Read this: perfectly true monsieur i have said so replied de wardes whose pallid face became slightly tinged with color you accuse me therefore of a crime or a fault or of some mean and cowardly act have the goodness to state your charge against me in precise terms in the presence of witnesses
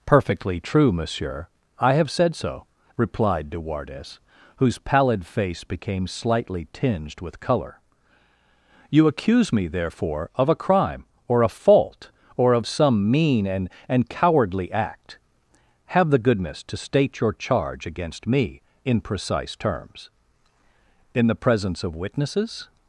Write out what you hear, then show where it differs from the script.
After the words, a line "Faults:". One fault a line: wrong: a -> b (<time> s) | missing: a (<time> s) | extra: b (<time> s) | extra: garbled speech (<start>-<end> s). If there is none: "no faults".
perfectly true monsieur i have said so replied de wardes whose pallid face became slightly tinged with color you accuse me therefore of a crime or a fault or of some mean and and cowardly act have the goodness to state your charge against me in precise terms in the presence of witnesses
Faults:
extra: and (13.9 s)